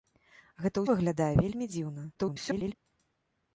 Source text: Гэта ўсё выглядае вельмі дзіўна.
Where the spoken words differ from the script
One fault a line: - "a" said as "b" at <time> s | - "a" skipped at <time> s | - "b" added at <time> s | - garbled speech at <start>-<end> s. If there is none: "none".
- "ўсё" skipped at 0.8 s
- garbled speech at 2.1-2.7 s